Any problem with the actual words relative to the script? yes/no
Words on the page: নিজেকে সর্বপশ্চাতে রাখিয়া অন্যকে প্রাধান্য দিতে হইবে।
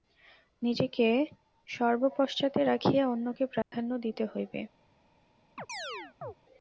no